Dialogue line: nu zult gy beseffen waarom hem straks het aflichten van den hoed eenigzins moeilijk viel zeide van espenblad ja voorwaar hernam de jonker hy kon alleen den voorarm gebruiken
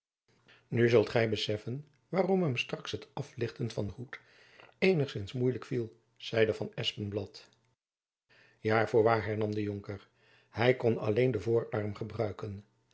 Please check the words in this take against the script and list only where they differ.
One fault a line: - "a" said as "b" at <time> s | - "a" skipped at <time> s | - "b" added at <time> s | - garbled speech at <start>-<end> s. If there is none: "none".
none